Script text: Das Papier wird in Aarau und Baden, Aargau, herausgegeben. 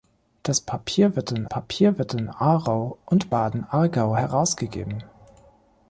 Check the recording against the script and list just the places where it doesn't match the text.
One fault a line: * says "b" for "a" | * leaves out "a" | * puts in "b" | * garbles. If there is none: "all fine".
* puts in "Papier wird in"